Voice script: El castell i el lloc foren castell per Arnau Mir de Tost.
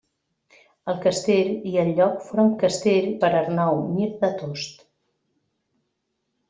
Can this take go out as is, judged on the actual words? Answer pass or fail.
pass